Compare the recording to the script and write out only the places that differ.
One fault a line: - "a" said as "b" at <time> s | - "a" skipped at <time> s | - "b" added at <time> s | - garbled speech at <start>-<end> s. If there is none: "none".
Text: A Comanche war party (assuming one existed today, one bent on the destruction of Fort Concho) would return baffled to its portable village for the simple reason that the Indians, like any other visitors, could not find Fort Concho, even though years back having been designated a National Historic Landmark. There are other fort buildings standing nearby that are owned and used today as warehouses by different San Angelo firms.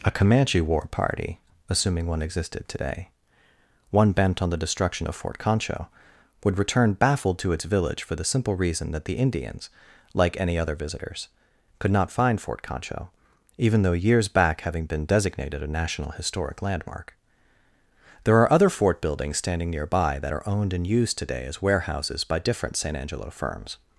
- "portable" skipped at 7.7 s